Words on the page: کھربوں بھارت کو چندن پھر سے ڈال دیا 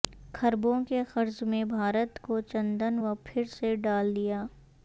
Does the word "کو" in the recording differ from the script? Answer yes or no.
no